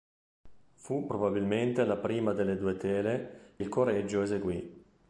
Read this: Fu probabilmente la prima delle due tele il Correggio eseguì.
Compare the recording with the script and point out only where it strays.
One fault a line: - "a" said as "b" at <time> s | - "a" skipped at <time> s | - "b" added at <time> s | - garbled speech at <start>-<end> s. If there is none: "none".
none